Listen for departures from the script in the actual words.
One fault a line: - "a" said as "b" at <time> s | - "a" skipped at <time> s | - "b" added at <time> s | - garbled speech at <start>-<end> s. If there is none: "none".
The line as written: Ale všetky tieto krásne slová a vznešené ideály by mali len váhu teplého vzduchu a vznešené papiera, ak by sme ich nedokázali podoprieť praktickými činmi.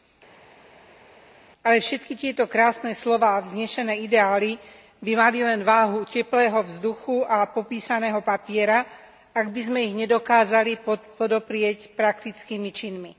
- "vznešené" said as "popísaného" at 7.5 s